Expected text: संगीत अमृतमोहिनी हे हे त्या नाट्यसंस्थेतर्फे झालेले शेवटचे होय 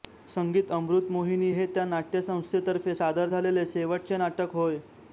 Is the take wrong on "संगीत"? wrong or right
right